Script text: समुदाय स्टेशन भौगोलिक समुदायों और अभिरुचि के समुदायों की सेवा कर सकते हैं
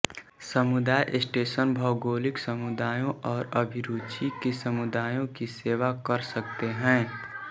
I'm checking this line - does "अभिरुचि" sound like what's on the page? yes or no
yes